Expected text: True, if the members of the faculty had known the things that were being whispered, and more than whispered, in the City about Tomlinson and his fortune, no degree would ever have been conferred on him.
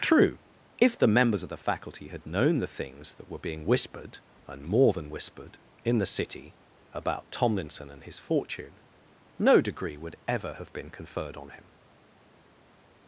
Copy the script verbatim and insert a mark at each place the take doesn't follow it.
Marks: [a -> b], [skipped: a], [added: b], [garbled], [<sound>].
True, if the members of the faculty had known the things that were being whispered, and more than whispered, in the City about Tomlinson and his fortune, no degree would ever have been conferred on him.